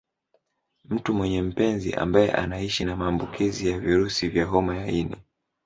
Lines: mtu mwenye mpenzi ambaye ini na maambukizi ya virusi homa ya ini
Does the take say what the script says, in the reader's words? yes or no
no